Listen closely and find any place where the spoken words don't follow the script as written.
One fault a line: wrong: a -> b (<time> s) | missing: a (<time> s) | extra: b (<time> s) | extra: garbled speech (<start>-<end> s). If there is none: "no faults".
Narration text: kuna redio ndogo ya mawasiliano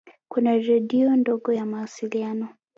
no faults